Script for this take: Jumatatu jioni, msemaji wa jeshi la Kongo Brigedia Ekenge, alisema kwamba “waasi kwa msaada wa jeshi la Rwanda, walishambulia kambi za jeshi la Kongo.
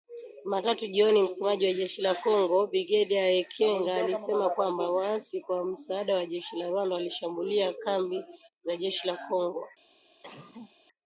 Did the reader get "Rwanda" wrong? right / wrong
right